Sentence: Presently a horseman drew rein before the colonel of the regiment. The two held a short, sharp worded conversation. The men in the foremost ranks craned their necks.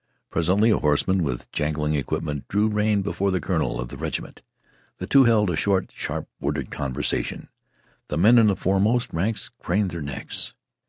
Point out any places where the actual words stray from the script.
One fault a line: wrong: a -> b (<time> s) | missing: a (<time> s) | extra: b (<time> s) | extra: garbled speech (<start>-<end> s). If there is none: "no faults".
extra: with jangling equipment (1.2 s)